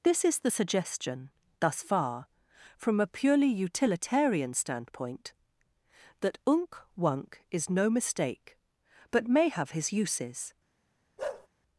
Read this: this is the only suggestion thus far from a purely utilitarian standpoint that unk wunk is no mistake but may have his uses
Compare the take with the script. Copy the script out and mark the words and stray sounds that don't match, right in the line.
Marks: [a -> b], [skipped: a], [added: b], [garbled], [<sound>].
this is the [skipped: only] suggestion thus far from a purely utilitarian standpoint that unk wunk is no mistake but may have his uses [bark]